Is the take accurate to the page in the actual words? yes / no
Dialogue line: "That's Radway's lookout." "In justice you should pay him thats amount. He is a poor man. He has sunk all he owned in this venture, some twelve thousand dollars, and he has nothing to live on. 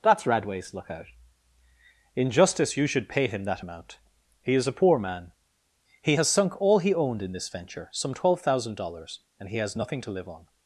no